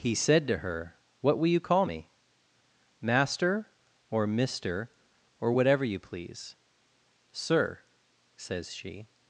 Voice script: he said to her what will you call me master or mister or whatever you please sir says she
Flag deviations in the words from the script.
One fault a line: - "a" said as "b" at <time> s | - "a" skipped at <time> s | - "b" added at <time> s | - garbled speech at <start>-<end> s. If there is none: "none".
none